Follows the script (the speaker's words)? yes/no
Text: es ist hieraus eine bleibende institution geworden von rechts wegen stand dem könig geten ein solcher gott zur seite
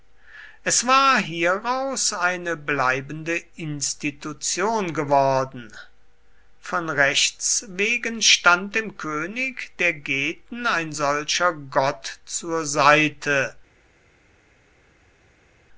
no